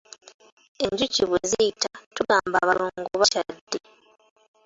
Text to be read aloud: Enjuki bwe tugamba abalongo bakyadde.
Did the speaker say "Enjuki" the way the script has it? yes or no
yes